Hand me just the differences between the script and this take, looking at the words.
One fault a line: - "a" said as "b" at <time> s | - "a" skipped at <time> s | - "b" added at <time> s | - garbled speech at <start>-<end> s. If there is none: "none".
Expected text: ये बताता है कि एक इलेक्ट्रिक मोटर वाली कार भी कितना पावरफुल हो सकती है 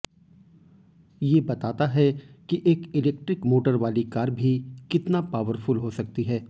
none